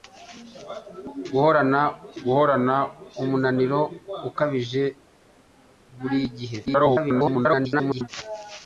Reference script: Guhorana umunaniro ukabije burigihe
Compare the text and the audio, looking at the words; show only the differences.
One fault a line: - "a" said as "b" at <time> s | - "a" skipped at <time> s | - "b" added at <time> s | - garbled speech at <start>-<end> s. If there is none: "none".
- "guhorana" added at 2.2 s
- garbled speech at 6.7-8.1 s